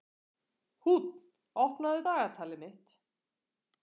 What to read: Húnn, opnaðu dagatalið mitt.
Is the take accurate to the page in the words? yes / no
yes